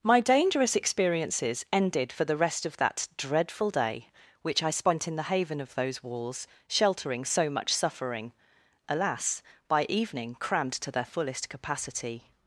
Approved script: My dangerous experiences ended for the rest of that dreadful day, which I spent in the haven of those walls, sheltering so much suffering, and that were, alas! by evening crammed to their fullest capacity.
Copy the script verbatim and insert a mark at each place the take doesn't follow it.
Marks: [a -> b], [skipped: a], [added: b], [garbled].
My dangerous experiences ended for the rest of that dreadful day, which I spent in the haven of those walls, sheltering so much suffering, [skipped: and that were,] alas! by evening crammed to their fullest capacity.